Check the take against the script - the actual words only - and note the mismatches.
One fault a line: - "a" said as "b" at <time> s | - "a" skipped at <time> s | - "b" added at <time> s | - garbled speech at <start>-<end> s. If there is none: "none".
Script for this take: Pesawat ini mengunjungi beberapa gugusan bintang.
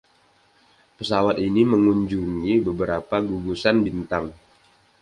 none